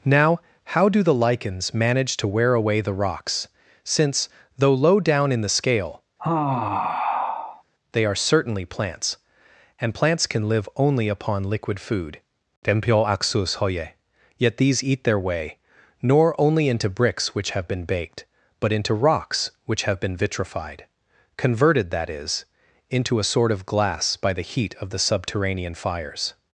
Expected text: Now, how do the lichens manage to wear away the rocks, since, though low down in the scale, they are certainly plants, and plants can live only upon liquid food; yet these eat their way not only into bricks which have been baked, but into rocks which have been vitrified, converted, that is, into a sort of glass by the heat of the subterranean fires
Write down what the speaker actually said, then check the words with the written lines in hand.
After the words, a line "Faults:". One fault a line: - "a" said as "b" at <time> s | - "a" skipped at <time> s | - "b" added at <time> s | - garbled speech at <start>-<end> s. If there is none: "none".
Now, how do the lichens manage to wear away the rocks, since, though low down in the scale, they are certainly plants, and plants can live only upon liquid food; yet these eat their way nor only into bricks which have been baked, but into rocks which have been vitrified, converted, that is, into a sort of glass by the heat of the subterranean fires
Faults:
- "not" said as "nor" at 16.0 s